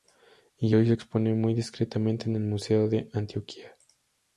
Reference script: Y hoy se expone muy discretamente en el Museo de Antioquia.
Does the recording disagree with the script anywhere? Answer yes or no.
no